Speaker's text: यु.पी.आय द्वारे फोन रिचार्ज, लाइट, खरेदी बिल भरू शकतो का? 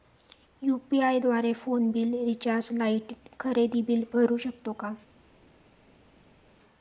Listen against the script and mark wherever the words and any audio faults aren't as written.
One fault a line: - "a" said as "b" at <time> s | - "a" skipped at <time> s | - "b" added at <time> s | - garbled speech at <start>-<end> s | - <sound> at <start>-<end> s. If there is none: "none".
- "बिल" added at 1.9 s